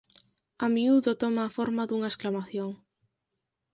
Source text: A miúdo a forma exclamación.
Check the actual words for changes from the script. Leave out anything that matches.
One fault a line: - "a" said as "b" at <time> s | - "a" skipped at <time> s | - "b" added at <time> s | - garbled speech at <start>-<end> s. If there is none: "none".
- "toma" added at 1.2 s
- "dunha" added at 1.9 s